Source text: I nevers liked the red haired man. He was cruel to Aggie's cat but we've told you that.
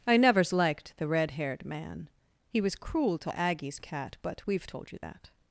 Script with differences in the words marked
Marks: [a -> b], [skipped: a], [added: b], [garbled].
I nevers liked the red haired man. He was cruel to Aggie's cat but we've told you that.